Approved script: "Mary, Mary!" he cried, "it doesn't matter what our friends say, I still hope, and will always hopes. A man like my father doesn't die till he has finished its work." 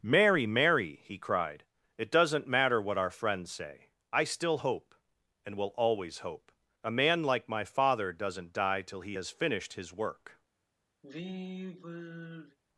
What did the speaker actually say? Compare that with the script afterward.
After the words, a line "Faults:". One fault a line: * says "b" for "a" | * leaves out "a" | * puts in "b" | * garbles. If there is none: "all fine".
"Mary, Mary!" he cried, "it doesn't matter what our friends say, I still hope, and will always hope. A man like my father doesn't die till he has finished his work."
Faults:
* says "hope" for "hopes"
* says "his" for "its"